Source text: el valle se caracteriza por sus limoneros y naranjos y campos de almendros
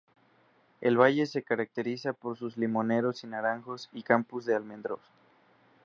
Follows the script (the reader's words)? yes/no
yes